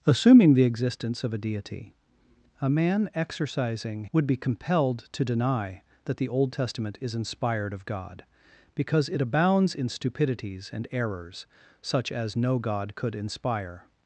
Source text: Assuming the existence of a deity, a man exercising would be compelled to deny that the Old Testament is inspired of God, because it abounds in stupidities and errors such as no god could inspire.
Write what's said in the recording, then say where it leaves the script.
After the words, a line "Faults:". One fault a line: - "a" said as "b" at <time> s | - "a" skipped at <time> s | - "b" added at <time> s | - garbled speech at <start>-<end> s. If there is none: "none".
Assuming the existence of a deity, a man exercising would be compelled to deny that the Old Testament is inspired of God, because it abounds in stupidities and errors such as no god could inspire.
Faults:
none